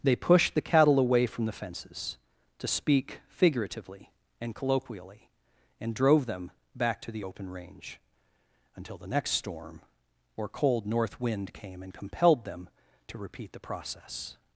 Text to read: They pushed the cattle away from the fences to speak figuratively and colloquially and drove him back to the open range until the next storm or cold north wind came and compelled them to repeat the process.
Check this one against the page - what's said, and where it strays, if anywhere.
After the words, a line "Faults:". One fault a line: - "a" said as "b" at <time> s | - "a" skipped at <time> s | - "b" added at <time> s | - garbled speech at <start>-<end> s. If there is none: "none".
They pushed the cattle away from the fences to speak figuratively and colloquially and drove them back to the open range until the next storm or cold north wind came and compelled them to repeat the process.
Faults:
- "him" said as "them" at 6.2 s